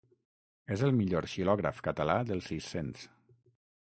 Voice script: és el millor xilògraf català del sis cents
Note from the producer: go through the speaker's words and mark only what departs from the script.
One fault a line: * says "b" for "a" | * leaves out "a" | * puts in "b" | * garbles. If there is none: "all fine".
all fine